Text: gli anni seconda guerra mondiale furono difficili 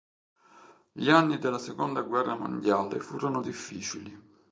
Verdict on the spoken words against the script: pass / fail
fail